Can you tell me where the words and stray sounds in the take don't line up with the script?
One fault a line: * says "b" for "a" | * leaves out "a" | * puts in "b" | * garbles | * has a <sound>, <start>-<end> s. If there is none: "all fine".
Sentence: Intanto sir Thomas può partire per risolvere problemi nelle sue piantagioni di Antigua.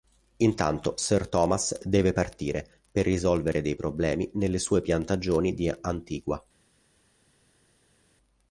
* says "deve" for "può"
* puts in "dei"